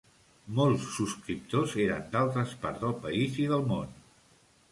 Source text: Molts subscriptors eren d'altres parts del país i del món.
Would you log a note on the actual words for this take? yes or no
no